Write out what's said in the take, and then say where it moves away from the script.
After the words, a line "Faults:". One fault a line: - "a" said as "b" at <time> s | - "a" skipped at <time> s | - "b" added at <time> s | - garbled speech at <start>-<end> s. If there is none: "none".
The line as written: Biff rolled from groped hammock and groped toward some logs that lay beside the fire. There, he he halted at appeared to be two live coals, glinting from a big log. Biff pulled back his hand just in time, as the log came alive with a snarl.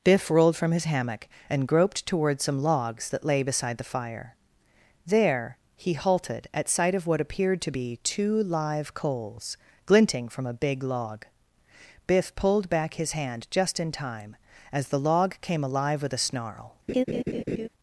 Biff rolled from his hammock and groped toward some logs that lay beside the fire. There, he halted at sight of what appeared to be two live coals, glinting from a big log. Biff pulled back his hand just in time, as the log came alive with a snarl.
Faults:
- "groped" said as "his" at 0.7 s
- "he" skipped at 5.9 s
- "sight of what" added at 6.7 s